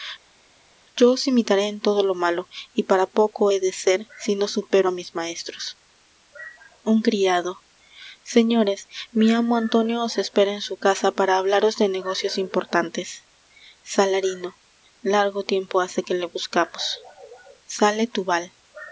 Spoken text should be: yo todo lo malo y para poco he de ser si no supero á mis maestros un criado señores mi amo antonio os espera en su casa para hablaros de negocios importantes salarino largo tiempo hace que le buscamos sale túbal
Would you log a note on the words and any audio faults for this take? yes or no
yes